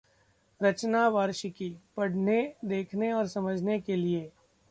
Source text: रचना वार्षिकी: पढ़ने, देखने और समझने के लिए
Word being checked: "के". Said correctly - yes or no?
yes